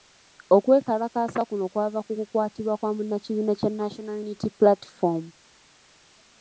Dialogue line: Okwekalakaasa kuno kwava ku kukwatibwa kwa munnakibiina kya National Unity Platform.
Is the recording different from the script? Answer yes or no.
no